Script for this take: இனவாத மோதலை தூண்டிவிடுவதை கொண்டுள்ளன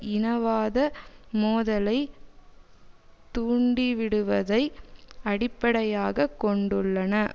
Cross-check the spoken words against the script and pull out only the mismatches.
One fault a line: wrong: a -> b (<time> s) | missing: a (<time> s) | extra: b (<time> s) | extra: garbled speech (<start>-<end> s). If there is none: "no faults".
extra: அடிப்படையாக (5.2 s)